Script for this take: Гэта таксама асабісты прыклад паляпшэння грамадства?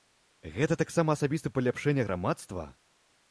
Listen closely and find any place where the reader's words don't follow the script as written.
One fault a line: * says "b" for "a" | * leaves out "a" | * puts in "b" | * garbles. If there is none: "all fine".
* leaves out "прыклад"